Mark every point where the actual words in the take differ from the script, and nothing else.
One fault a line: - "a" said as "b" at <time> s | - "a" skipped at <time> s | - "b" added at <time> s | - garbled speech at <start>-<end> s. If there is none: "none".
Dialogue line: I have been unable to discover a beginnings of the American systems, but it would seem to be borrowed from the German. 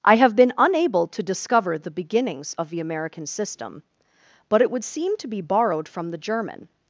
- "a" said as "the" at 1.8 s
- "systems" said as "system" at 3.3 s